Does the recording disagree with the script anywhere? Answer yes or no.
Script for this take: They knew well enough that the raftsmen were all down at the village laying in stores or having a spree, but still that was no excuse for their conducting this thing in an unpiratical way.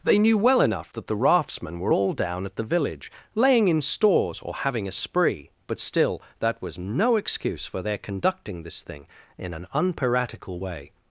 no